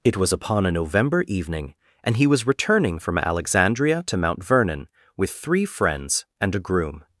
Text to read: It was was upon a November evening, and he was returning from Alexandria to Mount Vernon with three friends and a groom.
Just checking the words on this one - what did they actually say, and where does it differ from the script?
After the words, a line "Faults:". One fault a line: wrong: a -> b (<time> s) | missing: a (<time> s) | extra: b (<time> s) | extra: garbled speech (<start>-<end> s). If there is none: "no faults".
It was upon a November evening, and he was returning from Alexandria to Mount Vernon with three friends and a groom.
Faults:
missing: was (0.3 s)